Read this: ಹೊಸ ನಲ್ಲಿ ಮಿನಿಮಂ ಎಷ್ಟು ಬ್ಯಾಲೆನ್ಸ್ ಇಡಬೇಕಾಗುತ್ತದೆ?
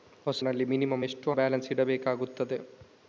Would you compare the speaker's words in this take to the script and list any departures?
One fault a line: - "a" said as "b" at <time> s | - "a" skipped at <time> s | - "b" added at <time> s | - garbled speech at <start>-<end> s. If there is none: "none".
none